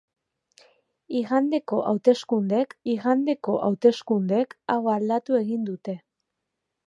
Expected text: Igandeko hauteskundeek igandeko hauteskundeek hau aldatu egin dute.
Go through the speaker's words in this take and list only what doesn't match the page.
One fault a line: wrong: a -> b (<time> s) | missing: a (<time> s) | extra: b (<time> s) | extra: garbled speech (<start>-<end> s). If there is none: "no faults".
no faults